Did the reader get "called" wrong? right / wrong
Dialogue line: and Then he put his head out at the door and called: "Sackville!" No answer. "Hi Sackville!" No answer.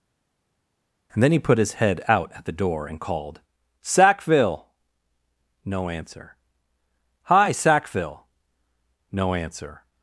right